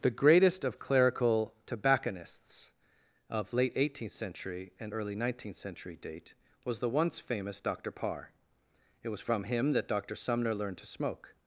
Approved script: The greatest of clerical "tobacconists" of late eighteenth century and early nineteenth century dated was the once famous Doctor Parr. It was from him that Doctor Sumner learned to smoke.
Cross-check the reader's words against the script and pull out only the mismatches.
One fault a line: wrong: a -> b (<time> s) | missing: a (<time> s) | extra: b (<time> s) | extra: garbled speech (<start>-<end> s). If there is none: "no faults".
wrong: dated -> date (6.0 s)